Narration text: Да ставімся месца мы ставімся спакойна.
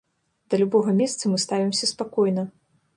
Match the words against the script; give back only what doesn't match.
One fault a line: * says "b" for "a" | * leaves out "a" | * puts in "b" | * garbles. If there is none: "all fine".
* says "любога" for "ставімся"